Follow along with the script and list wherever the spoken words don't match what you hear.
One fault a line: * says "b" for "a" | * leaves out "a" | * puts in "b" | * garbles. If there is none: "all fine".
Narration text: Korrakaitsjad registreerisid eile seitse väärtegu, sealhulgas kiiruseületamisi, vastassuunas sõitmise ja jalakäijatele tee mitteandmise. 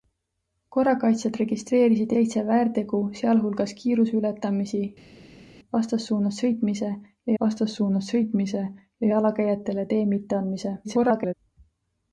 * leaves out "eile"
* puts in "vastassuunas sõitmise ja"
* garbles